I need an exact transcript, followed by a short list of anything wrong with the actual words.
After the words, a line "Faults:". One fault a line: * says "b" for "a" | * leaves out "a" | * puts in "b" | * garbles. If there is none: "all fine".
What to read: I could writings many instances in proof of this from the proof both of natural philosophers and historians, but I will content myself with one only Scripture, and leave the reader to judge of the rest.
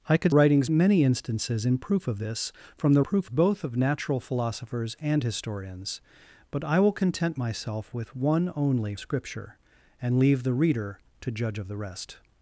I could writings many instances in proof of this from the proof both of natural philosophers and historians, but I will content myself with one only Scripture, and leave the reader to judge of the rest.
Faults:
all fine